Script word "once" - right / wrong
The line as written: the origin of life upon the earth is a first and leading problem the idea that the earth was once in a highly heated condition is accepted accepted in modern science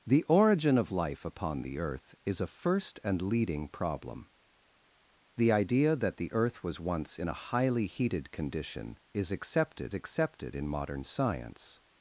right